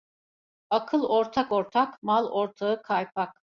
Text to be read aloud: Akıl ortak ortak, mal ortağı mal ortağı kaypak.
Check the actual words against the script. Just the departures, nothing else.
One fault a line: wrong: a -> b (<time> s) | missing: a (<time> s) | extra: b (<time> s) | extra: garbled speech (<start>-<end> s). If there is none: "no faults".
missing: mal ortağı (2.8 s)